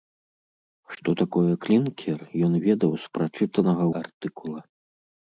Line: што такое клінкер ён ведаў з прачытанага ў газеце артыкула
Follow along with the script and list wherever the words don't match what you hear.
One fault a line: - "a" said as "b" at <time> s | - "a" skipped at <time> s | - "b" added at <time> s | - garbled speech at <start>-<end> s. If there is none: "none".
- "ў газеце" skipped at 3.8 s